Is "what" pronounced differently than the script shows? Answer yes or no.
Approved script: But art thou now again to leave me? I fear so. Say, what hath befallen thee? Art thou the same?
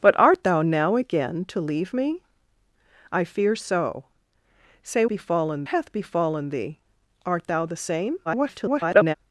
yes